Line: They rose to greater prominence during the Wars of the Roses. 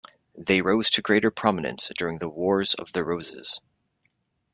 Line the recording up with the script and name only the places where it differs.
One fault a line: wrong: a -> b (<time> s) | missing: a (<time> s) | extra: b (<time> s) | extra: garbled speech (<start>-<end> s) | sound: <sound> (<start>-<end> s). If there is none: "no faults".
no faults